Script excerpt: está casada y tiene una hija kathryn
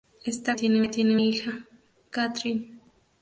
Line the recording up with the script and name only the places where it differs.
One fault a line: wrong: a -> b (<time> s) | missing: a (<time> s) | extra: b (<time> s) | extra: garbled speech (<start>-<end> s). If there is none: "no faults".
wrong: casada -> tiene (0.5 s)
missing: una (1.2 s)